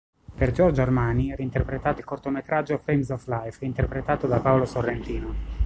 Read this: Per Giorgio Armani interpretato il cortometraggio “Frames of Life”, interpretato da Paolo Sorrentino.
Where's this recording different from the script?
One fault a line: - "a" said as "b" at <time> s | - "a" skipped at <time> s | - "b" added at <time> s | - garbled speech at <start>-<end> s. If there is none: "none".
none